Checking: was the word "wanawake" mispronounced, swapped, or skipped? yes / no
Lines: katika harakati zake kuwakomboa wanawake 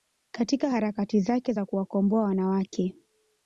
no